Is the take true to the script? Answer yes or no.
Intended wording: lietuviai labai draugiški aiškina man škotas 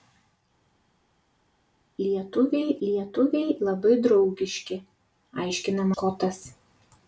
no